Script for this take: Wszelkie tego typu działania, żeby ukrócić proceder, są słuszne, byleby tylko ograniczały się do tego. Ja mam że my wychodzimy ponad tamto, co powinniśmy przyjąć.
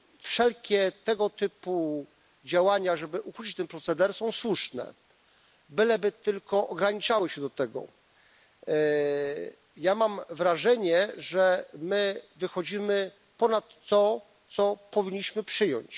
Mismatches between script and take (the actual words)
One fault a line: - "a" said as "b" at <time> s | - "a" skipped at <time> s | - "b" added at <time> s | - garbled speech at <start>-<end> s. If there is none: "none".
- "ten" added at 3.5 s
- "wrażenie" added at 10.3 s
- "tamto" said as "to" at 13.9 s